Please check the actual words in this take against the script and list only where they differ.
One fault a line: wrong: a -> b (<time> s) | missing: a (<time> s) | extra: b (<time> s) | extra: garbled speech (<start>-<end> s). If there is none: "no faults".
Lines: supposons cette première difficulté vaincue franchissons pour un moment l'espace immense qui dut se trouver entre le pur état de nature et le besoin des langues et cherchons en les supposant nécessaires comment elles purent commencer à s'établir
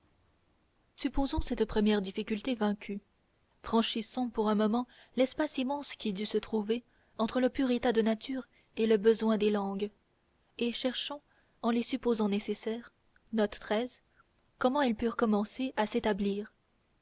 no faults